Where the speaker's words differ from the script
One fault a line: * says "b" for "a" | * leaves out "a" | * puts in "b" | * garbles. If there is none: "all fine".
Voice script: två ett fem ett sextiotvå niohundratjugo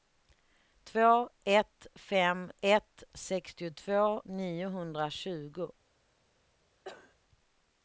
all fine